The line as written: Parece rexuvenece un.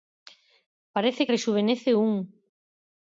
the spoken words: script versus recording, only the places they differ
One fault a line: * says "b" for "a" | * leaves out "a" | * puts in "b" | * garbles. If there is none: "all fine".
all fine